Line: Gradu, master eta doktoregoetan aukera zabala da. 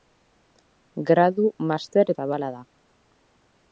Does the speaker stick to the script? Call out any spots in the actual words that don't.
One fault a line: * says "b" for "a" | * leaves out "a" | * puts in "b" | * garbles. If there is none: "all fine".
* leaves out "eta doktoregoetan aukera"